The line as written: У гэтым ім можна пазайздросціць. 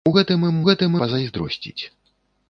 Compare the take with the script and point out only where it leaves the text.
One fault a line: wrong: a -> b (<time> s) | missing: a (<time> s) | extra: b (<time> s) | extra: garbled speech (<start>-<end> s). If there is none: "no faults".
wrong: можна -> гэтым (0.7 s)